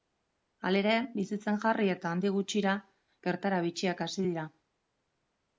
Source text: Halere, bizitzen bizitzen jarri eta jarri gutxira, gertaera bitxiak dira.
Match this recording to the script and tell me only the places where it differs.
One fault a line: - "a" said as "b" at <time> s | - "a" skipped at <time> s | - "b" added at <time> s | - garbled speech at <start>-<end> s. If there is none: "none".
- "bizitzen" skipped at 1.6 s
- "jarri" said as "handik" at 2.1 s
- "hasi" added at 4.1 s